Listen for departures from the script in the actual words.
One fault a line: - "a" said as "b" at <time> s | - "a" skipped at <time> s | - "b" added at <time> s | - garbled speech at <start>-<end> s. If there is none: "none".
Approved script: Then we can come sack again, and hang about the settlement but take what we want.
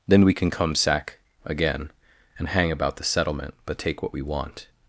none